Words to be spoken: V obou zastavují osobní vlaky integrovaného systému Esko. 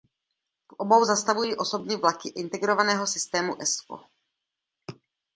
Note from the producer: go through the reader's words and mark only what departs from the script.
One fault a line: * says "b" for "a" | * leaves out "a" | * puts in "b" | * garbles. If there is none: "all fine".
all fine